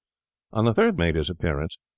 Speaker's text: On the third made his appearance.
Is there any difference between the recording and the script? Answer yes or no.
no